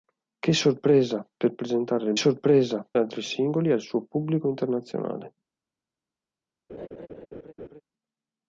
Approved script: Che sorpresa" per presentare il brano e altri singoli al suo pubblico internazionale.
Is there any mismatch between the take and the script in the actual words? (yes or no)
yes